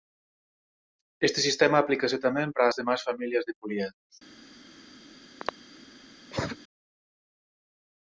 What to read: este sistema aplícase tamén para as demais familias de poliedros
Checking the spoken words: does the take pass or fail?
pass